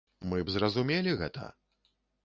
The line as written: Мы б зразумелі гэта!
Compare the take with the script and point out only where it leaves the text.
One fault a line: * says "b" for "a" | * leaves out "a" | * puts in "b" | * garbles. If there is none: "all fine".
all fine